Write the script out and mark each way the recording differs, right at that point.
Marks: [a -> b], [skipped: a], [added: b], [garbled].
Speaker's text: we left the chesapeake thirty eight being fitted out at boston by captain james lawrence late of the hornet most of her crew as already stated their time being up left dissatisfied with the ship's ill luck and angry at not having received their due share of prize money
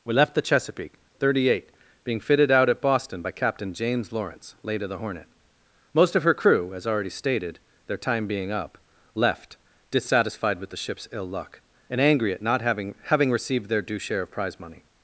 we left the chesapeake thirty eight being fitted out at boston by captain james lawrence late of the hornet most of her crew as already stated their time being up left dissatisfied with the ship's ill luck and angry at not having [added: having] received their due share of prize money